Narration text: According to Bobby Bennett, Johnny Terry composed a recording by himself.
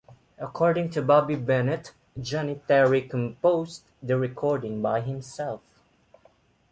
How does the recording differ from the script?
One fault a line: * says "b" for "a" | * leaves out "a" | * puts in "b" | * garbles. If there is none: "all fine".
* says "the" for "a"